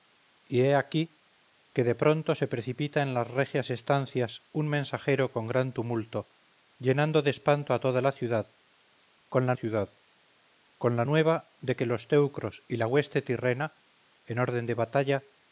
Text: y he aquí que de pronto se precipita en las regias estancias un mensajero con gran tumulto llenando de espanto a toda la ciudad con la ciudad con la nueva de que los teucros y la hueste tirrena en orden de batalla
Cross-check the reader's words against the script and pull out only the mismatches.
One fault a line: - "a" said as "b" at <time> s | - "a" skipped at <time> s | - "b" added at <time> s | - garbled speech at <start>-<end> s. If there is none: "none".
none